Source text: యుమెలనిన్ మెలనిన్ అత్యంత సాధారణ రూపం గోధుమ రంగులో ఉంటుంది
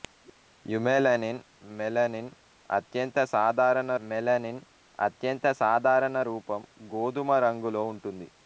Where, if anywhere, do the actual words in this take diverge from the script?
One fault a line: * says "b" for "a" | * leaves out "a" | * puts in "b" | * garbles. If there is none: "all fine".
* puts in "మెలనిన్ అత్యంత సాధారణ"